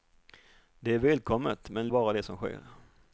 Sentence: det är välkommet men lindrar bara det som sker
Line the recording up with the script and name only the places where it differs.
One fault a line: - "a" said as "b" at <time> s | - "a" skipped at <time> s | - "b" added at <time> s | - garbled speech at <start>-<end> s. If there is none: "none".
- "lindrar" skipped at 1.9 s